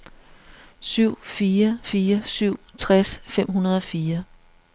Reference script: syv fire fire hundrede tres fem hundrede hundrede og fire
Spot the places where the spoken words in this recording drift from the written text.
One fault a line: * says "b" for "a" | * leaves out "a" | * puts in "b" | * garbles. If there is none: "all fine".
* says "syv" for "hundrede"
* leaves out "hundrede"